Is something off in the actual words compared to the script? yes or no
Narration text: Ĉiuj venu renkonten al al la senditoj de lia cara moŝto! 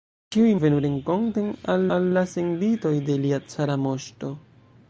no